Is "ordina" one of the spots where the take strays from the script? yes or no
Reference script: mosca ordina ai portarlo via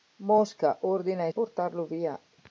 no